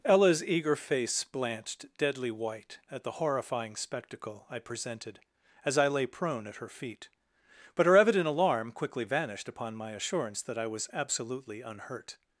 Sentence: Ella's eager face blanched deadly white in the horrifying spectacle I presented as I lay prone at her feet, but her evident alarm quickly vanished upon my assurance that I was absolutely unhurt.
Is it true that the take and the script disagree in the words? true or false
true